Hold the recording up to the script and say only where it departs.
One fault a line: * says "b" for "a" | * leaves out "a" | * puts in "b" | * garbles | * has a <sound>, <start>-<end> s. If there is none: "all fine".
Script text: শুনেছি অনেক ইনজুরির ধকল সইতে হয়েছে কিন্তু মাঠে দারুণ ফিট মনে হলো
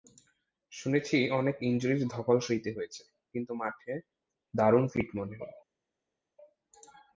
all fine